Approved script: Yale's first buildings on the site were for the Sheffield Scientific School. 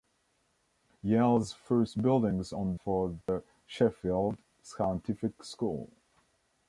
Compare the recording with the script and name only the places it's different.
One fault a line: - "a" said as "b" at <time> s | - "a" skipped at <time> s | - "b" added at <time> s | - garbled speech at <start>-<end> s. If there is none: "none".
- "the site were" skipped at 2.8 s